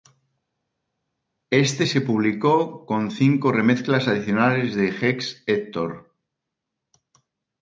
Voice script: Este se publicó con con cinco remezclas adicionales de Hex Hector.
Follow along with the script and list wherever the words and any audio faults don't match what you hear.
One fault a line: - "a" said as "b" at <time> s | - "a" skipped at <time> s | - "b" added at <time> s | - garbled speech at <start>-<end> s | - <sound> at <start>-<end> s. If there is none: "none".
- "con" skipped at 3.1 s